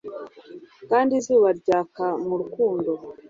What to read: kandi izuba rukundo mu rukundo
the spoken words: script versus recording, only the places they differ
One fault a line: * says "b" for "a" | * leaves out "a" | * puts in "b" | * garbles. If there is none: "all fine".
* says "ryaka" for "rukundo"